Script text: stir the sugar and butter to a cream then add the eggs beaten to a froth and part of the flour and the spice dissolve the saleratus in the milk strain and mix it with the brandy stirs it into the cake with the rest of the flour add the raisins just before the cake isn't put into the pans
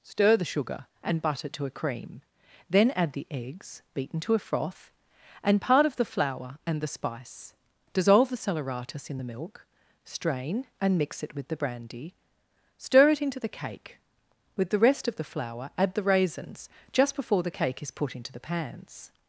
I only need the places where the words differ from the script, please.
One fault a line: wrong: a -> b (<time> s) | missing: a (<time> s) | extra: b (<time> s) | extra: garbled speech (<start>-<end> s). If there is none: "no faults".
wrong: stirs -> stir (12.8 s)
wrong: isn't -> is (17.8 s)